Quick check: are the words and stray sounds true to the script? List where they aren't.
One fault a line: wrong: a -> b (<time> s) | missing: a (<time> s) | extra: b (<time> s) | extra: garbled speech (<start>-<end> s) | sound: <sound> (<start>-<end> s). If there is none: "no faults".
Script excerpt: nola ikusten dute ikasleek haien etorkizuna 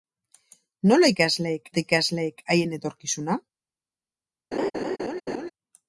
wrong: ikusten -> ikasleek (1.1 s)
sound: laugh (4.5-5.5 s)